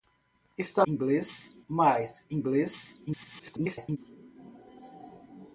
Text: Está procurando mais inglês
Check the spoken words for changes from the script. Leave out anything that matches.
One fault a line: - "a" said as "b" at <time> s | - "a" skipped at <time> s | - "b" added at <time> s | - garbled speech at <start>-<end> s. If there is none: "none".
- "procurando" said as "inglês" at 0.8 s
- garbled speech at 3.1-4.0 s